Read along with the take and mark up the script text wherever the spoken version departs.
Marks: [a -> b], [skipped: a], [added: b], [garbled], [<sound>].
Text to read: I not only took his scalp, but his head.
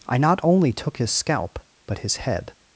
I not only took his scalp, but his head.